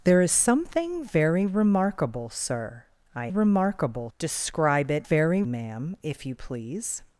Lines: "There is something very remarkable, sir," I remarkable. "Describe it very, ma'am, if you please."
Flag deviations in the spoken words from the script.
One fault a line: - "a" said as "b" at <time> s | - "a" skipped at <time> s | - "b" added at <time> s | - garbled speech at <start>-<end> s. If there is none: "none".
none